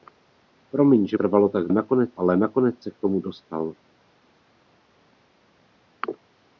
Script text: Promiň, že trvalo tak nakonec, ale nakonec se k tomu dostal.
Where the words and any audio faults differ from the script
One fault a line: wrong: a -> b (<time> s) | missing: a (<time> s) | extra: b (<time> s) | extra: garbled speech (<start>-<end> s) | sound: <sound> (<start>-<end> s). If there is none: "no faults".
no faults